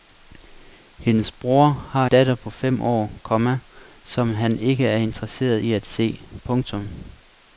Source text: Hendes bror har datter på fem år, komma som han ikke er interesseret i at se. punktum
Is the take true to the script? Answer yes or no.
yes